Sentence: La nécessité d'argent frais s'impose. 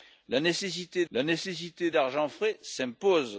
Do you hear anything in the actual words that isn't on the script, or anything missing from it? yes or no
yes